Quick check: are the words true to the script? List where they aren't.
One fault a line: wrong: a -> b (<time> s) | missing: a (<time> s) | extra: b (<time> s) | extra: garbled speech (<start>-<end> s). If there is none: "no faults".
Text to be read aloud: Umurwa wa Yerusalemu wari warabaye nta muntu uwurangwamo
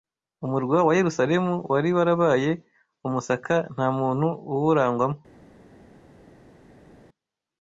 extra: umusaka (3.1 s)